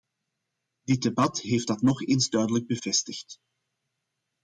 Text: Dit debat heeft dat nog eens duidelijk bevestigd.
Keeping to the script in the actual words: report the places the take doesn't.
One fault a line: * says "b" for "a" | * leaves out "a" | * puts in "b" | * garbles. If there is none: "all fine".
all fine